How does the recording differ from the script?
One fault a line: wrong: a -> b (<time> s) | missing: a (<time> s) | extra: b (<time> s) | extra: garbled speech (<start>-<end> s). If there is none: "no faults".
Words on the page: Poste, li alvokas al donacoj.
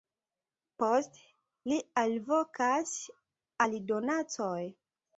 no faults